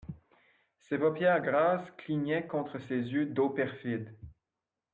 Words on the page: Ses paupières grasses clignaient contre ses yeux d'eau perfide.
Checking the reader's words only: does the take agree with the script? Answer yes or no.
yes